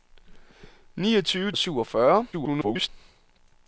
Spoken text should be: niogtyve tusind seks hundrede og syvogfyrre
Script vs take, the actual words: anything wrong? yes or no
yes